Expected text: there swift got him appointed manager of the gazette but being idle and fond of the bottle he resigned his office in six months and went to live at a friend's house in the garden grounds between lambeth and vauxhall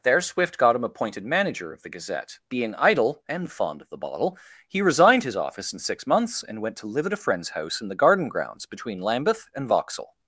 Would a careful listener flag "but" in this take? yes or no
yes